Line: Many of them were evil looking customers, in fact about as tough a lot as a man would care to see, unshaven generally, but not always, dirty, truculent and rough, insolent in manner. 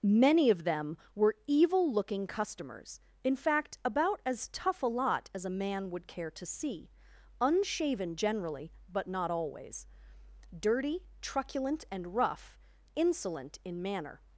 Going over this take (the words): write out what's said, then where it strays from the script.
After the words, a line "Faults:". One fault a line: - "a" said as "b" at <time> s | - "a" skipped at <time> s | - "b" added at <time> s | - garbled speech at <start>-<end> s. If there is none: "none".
Many of them were evil looking customers, in fact about as tough a lot as a man would care to see, unshaven generally, but not always, dirty, truculent and rough, insolent in manner.
Faults:
none